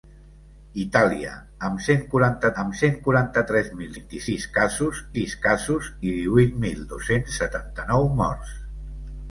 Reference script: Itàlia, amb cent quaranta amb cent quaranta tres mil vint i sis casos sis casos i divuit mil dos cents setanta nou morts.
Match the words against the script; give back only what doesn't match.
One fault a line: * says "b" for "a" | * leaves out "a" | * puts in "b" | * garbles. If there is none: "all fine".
all fine